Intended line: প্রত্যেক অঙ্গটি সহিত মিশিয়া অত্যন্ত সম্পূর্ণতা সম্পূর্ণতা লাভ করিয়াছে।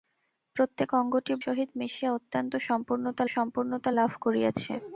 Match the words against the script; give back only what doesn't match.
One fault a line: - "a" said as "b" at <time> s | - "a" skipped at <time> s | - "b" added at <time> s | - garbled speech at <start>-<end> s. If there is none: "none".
none